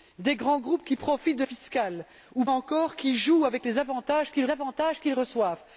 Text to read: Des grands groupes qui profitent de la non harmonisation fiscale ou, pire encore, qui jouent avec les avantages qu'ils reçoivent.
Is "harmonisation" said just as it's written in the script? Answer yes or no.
no